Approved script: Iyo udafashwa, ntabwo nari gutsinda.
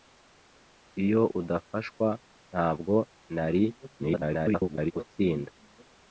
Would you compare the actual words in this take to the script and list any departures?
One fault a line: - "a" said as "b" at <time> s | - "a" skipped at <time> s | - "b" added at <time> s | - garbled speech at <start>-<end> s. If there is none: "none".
- garbled speech at 4.0-4.9 s